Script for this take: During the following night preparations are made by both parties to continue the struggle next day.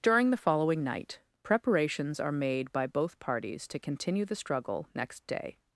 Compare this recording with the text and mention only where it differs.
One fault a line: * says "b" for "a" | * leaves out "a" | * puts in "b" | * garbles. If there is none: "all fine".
all fine